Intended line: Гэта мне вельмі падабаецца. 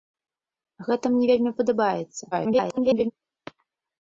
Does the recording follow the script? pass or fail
fail